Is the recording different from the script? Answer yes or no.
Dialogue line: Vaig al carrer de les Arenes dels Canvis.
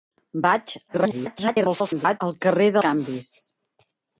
yes